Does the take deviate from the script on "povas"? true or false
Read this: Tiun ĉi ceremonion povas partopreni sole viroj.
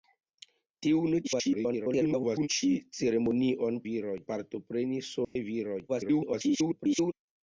true